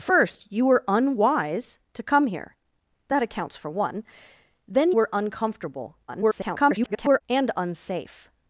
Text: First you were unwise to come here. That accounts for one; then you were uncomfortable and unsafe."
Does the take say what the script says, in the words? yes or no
no